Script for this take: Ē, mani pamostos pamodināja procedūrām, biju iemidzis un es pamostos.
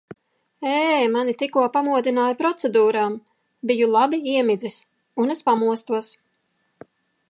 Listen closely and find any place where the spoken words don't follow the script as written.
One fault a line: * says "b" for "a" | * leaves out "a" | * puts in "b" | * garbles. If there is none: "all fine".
* says "tikko" for "pamostos"
* puts in "labi"